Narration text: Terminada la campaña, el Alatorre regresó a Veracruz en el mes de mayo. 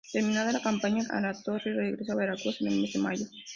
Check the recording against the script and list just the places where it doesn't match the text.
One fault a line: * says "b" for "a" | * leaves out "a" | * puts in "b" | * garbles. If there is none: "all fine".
all fine